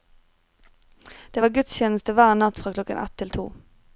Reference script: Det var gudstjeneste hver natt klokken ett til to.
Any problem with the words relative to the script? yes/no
yes